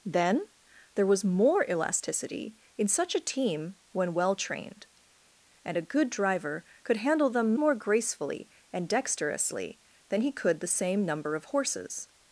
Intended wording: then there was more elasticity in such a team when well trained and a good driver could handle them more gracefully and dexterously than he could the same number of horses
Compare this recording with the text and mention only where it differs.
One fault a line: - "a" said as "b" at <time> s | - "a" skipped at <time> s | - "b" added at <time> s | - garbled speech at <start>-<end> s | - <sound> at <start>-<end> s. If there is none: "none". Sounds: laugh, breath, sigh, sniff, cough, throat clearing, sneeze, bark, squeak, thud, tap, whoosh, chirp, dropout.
none